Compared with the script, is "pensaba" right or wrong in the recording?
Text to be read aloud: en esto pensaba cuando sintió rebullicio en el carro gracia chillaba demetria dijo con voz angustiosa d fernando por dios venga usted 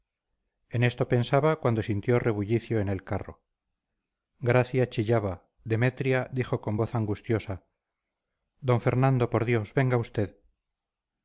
right